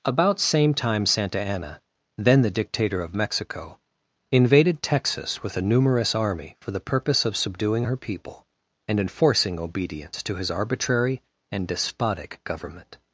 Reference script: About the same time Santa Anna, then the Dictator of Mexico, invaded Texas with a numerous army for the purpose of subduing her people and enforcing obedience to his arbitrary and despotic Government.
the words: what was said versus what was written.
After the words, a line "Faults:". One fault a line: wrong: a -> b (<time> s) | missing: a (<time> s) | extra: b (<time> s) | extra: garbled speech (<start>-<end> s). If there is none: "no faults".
About same time Santa Anna, then the Dictator of Mexico, invaded Texas with a numerous army for the purpose of subduing her people and enforcing obedience to his arbitrary and despotic Government.
Faults:
missing: the (0.4 s)